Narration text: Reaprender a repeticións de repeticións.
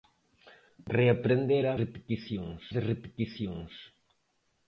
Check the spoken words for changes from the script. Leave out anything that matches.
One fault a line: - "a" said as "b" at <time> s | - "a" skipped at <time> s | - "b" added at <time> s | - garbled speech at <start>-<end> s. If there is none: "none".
none